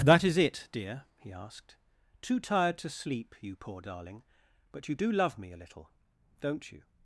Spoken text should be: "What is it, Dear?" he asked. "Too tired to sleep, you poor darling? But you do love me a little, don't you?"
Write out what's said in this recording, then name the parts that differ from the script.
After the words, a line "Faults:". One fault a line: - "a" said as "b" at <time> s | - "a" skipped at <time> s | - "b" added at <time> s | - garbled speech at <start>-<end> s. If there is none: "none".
"That is it, Dear?" he asked. "Too tired to sleep, you poor darling? But you do love me a little, don't you?"
Faults:
- "What" said as "That" at 0.0 s